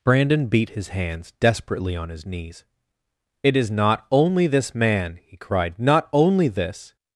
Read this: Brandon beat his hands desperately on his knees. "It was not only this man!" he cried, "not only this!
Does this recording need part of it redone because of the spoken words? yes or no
yes